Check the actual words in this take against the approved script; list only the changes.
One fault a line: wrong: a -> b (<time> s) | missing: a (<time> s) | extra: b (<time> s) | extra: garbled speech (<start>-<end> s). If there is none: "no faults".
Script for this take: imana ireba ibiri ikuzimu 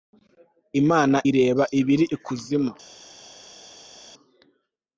no faults